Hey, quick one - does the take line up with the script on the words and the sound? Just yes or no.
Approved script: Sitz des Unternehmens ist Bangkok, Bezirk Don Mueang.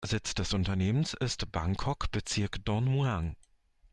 yes